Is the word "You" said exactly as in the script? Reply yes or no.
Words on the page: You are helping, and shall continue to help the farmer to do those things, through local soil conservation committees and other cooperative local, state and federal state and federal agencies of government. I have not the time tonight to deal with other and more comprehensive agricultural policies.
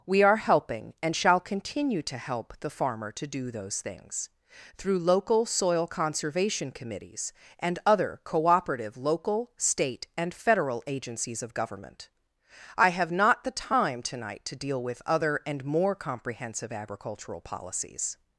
no